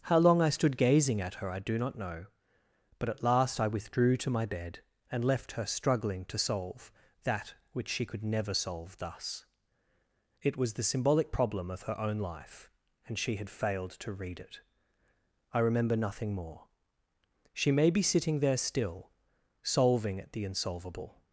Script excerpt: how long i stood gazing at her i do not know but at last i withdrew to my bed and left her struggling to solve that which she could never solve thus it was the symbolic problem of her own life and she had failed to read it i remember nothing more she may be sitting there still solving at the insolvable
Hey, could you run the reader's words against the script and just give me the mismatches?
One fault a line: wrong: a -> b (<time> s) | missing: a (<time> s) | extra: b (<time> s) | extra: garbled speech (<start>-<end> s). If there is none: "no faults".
no faults